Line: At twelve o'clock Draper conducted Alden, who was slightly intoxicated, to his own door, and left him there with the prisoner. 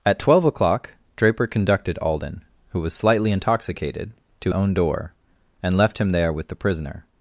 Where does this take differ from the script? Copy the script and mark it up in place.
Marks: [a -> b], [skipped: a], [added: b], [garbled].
At twelve o'clock Draper conducted Alden, who was slightly intoxicated, to [skipped: his] own door, and left him there with the prisoner.